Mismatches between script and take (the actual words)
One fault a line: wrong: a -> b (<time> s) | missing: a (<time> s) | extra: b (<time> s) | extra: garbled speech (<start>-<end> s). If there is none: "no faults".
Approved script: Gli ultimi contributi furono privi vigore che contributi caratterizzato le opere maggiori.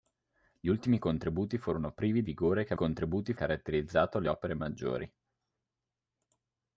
no faults